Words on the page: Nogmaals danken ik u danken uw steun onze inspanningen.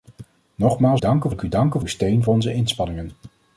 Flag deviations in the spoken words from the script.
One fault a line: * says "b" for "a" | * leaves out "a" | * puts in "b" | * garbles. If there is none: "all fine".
all fine